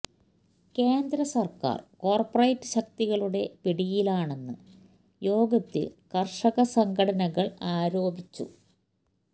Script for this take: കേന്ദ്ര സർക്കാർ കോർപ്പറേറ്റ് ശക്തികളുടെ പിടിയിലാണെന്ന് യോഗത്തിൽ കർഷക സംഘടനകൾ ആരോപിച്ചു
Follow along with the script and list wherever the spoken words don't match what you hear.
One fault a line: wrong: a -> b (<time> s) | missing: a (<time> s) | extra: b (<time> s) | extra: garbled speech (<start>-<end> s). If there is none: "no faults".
no faults